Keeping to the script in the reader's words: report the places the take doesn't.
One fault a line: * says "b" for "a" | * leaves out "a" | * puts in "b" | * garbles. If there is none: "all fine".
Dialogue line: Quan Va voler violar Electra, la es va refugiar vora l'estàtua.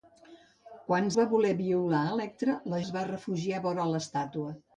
all fine